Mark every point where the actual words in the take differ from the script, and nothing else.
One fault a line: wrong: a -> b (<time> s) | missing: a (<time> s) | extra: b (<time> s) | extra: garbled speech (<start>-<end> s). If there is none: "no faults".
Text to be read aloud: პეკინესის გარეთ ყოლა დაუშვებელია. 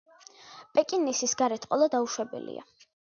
no faults